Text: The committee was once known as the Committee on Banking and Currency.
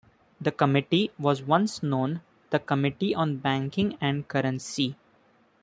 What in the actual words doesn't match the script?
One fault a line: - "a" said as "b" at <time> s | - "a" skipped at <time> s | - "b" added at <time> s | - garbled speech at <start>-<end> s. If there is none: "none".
- "as" skipped at 2.2 s